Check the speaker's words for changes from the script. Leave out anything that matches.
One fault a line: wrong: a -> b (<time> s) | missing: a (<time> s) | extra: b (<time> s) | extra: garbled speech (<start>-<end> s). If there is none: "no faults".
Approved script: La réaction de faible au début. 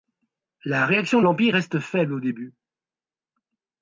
extra: l'Empire reste (1.2 s)